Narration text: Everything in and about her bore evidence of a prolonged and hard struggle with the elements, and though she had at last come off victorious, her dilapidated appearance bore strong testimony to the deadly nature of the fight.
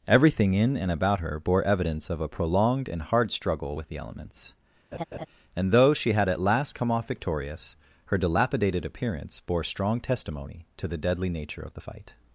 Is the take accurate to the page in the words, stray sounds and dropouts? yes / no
no